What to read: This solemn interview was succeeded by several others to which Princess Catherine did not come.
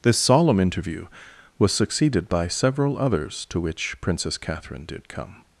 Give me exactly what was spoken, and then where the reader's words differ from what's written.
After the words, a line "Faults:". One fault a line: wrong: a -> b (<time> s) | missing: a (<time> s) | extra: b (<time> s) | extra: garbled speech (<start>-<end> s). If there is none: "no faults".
This solemn interview was succeeded by several others to which Princess Catherine did come.
Faults:
missing: not (5.1 s)